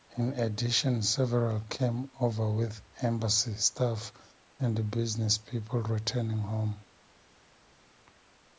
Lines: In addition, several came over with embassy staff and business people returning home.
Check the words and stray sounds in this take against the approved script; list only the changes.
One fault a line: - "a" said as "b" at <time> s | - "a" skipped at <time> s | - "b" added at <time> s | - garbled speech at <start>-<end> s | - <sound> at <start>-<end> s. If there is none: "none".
none